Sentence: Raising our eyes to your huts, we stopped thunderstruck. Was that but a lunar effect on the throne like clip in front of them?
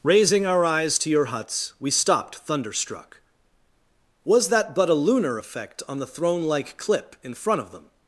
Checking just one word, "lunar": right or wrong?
right